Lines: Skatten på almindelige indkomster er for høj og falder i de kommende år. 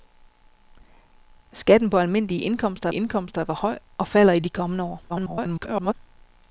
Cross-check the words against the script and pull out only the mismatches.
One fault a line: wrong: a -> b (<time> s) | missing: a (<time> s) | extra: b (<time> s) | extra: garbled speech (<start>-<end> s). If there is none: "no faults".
extra: indkomster (2.9 s)
extra: garbled speech (5.1-5.9 s)